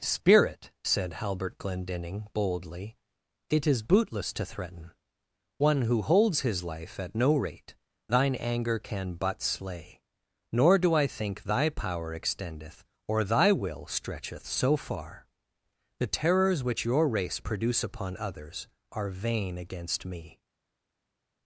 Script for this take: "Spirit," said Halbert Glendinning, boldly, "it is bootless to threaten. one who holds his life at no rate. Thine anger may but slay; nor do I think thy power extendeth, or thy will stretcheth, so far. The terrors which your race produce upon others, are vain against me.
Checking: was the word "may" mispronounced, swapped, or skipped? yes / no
yes